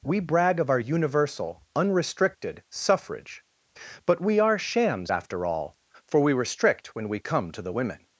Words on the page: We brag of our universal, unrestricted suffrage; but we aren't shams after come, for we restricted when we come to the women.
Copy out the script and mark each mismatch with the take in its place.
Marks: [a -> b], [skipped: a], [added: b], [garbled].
We brag of our universal, unrestricted suffrage; but we [aren't -> are] shams after [come, -> all] for we [restricted -> restrict] when we come to the women.